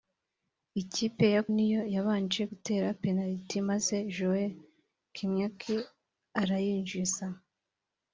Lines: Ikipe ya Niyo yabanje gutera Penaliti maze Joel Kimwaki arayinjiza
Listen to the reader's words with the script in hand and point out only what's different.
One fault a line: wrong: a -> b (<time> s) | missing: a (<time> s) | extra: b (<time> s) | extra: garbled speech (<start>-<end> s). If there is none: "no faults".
no faults